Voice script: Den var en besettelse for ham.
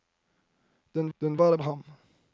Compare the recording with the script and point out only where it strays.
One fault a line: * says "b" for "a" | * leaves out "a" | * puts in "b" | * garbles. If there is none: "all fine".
* puts in "den"
* leaves out "besettelse for"